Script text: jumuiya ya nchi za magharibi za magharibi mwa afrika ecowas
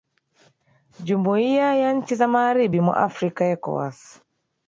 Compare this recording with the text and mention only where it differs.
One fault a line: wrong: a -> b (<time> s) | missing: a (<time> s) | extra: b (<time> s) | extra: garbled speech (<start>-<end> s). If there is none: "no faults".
missing: za magharibi (2.8 s)